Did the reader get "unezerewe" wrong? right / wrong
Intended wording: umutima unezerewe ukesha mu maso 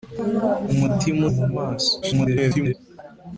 wrong